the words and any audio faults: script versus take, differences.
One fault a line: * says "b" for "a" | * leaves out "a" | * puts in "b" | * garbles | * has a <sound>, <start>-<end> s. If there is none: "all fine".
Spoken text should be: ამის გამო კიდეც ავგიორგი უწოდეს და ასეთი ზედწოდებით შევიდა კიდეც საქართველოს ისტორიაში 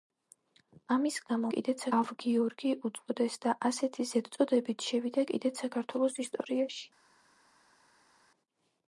all fine